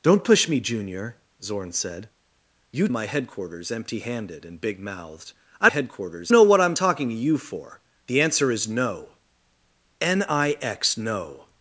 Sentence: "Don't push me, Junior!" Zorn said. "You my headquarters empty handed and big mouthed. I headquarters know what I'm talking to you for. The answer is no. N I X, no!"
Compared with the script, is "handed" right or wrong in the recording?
right